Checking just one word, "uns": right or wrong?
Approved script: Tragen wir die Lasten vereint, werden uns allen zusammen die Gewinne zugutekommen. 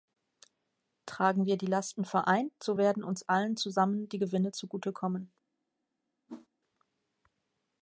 right